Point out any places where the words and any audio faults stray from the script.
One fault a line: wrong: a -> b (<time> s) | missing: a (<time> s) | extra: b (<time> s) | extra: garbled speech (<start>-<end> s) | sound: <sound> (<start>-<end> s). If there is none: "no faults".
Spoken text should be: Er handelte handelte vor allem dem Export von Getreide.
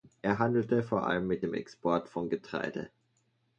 missing: handelte (0.8 s)
extra: mit (1.3 s)